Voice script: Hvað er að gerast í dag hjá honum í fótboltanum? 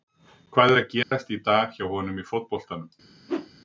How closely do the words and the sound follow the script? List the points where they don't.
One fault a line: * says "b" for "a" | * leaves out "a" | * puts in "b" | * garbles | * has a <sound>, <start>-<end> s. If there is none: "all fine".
* has a dropout, 1.0-1.1 s
* has a whoosh, 3.3-3.5 s